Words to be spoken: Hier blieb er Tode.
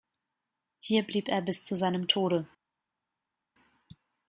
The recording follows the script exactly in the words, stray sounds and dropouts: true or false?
false